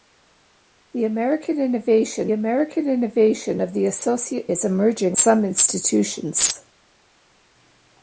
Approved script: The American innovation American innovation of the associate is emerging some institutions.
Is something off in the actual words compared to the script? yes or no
no